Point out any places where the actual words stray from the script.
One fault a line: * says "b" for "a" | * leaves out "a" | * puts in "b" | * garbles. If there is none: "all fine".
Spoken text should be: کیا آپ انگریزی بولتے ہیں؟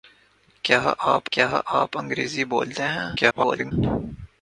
* puts in "کیا آپ"
* garbles